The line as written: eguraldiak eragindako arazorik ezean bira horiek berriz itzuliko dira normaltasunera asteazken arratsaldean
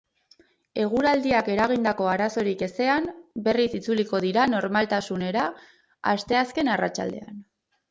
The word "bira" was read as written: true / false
false